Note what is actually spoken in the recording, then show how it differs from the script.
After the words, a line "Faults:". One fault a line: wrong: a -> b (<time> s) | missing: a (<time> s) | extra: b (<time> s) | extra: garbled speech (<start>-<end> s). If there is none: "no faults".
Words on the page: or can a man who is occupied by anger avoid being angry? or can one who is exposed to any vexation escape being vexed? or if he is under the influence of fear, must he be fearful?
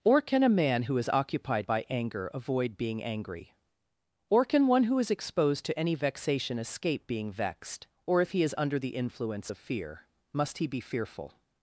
or can a man who is occupied by anger avoid being angry? or can one who is exposed to any vexation escape being vexed? or if he is under the influence of fear, must he be fearful?
Faults:
no faults